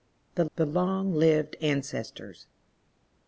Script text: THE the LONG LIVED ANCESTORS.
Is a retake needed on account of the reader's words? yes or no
no